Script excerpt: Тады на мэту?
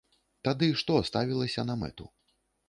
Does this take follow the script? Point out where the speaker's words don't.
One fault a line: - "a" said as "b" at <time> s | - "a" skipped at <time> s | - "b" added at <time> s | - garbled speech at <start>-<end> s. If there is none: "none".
- "што ставілася" added at 0.8 s